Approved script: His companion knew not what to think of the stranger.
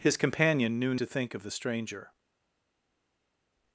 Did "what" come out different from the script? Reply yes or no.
yes